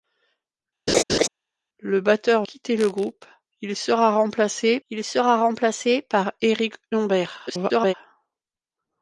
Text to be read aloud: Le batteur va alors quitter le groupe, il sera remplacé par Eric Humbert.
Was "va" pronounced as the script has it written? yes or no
no